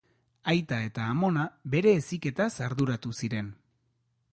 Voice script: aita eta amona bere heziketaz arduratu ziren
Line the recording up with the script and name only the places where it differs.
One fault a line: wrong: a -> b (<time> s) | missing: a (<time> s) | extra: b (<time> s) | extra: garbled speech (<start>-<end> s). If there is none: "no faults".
no faults